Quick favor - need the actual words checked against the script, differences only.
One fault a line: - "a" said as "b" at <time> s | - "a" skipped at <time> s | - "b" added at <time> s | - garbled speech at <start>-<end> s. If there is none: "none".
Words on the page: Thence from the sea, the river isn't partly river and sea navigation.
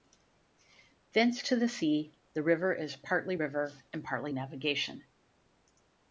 - "from" said as "to" at 1.4 s
- "isn't" said as "is" at 2.7 s
- "sea" said as "partly" at 4.0 s